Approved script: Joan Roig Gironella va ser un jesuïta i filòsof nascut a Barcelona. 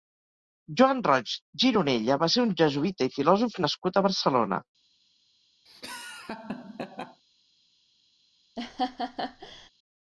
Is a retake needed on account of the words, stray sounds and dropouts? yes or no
yes